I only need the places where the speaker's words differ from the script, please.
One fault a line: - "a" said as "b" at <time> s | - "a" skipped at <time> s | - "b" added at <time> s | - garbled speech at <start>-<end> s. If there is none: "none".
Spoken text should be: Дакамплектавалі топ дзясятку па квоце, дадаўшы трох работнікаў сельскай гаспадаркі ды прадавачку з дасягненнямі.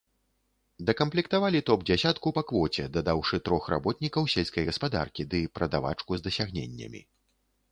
none